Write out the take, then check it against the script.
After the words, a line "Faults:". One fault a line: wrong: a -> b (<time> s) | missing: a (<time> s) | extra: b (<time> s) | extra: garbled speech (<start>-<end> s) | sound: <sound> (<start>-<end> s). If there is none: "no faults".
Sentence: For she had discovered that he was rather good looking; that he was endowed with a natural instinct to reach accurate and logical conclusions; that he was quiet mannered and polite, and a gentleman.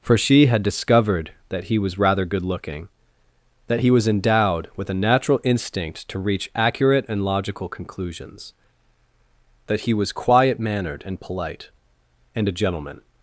For she had discovered that he was rather good looking; that he was endowed with a natural instinct to reach accurate and logical conclusions; that he was quiet mannered and polite, and a gentleman.
Faults:
no faults